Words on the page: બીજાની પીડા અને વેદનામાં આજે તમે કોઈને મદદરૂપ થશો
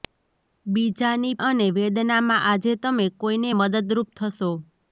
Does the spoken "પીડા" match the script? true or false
false